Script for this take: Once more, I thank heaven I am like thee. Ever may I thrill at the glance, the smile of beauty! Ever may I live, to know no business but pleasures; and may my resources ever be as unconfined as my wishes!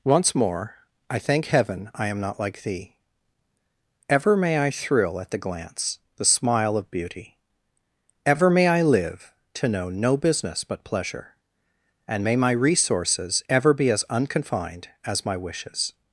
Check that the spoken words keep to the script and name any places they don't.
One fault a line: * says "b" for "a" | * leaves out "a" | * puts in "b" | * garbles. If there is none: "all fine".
* puts in "not"
* says "pleasure" for "pleasures"